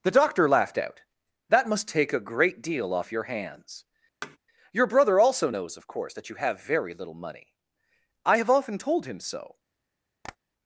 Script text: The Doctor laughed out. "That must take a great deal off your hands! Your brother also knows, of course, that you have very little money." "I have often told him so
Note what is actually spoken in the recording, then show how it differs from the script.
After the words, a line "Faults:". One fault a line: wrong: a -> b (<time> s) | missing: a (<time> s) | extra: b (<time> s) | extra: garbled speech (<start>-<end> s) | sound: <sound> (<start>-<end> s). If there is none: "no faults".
The Doctor laughed out. "That must take a great deal off your hands! Your brother also knows, of course, that you have very little money." "I have often told him so
Faults:
sound: thud (4.2-4.4 s)
sound: tap (10.2-10.4 s)